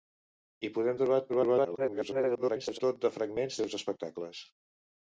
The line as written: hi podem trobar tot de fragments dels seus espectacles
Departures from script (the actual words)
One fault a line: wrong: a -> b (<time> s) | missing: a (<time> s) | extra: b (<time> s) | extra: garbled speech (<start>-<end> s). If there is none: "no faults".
extra: garbled speech (1.3-2.8 s)
missing: dels (3.6 s)